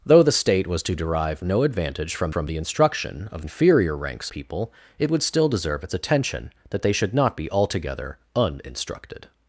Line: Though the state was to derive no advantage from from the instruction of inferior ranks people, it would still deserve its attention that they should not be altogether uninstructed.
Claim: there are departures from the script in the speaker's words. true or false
false